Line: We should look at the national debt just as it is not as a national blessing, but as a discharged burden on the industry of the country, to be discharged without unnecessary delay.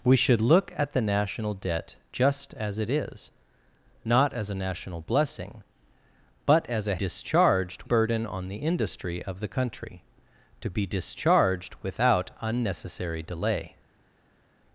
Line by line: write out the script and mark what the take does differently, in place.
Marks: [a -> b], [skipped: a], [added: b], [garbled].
We should look at the national debt just as it is not as a national blessing, but as a discharged burden on the industry of the country, to be discharged without unnecessary delay.